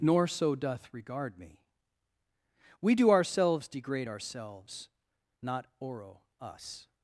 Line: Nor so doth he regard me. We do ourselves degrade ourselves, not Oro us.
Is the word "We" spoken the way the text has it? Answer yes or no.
yes